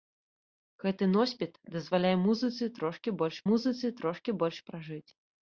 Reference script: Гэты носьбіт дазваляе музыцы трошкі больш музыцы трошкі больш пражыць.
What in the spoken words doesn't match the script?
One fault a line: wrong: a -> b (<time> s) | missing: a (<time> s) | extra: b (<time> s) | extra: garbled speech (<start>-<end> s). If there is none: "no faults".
no faults